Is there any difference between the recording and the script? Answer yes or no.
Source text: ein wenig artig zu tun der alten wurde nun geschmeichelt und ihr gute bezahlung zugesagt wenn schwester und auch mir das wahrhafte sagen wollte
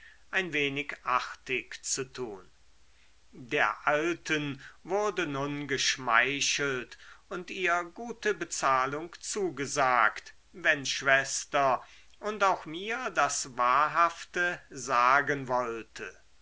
no